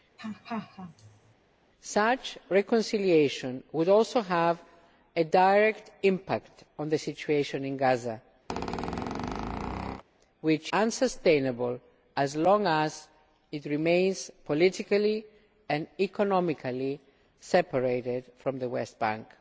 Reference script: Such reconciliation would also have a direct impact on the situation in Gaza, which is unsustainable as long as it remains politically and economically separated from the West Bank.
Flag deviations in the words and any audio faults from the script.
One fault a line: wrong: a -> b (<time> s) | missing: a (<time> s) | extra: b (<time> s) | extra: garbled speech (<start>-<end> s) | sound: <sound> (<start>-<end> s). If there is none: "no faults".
sound: laugh (0.2-1.3 s)
sound: squeak (8.5-10.0 s)
missing: is (10.7 s)